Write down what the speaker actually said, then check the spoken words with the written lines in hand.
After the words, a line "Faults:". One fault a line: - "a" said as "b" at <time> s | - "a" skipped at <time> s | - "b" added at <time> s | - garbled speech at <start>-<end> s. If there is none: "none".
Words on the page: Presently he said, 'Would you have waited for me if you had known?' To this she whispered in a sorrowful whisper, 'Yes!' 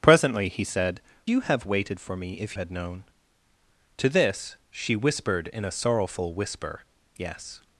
Presently he said, 'You have waited for me if had known?' To this she whispered in a sorrowful whisper, 'Yes!'
Faults:
- "Would" skipped at 1.0 s
- "you" skipped at 2.6 s